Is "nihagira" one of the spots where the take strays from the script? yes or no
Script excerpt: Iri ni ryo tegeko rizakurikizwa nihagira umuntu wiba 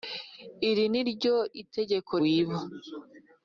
yes